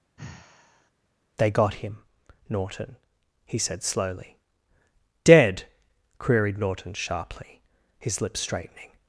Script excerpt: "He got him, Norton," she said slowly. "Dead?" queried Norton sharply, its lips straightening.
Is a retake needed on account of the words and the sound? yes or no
yes